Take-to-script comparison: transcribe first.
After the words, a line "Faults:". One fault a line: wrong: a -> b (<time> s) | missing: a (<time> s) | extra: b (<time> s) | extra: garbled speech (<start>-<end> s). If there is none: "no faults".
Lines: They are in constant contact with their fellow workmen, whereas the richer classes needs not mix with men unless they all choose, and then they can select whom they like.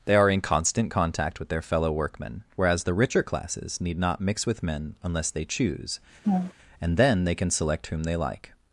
They are in constant contact with their fellow workmen, whereas the richer classes need not mix with men unless they choose, and then they can select whom they like.
Faults:
wrong: needs -> need (3.8 s)
missing: all (5.4 s)